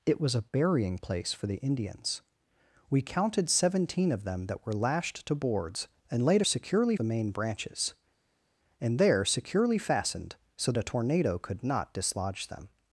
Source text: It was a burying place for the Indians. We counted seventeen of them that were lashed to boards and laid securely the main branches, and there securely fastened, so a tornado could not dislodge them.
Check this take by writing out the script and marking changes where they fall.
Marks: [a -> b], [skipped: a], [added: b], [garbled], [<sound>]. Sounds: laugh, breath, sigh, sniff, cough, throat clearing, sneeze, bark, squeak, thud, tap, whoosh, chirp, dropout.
It was a burying place for the Indians. We counted seventeen of them that were lashed to boards and laid securely the main branches, and there securely fastened, so a tornado could not dislodge them.